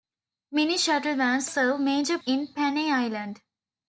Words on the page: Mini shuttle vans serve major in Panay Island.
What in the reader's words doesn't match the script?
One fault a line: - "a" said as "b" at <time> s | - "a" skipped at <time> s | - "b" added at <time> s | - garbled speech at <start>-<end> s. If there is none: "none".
none